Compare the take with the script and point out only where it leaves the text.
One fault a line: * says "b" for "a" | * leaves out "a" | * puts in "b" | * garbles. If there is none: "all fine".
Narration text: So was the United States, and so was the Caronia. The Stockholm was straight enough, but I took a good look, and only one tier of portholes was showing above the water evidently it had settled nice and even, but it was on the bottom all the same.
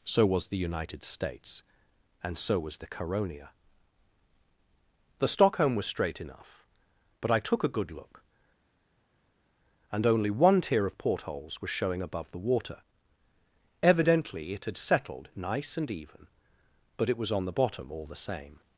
all fine